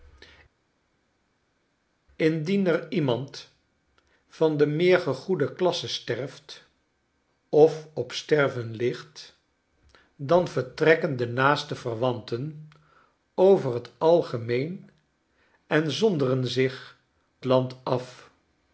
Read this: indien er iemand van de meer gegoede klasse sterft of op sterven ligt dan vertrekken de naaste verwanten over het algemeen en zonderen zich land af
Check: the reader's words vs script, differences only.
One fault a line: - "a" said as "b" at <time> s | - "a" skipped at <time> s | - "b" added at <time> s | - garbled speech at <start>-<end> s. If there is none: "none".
none